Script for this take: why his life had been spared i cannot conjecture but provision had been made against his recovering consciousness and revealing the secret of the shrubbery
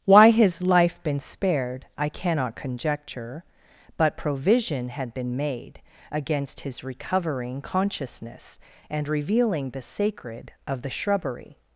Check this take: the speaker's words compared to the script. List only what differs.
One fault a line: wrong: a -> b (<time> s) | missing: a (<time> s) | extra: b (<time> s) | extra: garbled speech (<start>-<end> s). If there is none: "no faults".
missing: had (1.0 s)
wrong: secret -> sacred (9.8 s)